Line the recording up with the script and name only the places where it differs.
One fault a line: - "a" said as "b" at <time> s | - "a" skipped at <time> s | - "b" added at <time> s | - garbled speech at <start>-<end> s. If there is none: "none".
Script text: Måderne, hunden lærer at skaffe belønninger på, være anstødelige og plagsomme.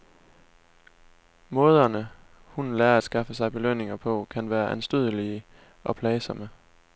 - "sig" added at 3.3 s
- "kan" added at 4.3 s